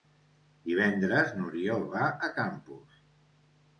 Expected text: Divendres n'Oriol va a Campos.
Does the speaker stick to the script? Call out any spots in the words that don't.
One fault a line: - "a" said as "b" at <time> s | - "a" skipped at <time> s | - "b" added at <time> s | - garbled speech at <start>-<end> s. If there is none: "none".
none